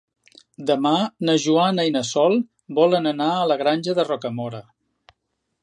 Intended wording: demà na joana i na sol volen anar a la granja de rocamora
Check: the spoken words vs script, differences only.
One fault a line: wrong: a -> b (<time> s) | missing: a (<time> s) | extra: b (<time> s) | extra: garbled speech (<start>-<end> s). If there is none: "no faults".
no faults